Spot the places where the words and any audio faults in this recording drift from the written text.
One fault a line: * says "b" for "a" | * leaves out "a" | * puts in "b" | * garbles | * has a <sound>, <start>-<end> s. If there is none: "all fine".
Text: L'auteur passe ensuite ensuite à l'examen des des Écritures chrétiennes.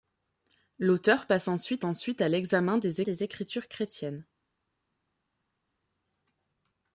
all fine